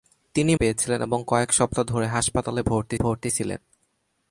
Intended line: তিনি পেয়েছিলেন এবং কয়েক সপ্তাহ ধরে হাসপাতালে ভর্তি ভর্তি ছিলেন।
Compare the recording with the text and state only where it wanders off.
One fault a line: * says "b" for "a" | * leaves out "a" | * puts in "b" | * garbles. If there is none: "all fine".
all fine